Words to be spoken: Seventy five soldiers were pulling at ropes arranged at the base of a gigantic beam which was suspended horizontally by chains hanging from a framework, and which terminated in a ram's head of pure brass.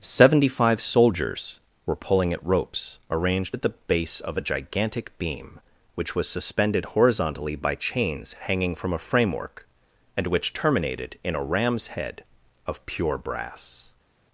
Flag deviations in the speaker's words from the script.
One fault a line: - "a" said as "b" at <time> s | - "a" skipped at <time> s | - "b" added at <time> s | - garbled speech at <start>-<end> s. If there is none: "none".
none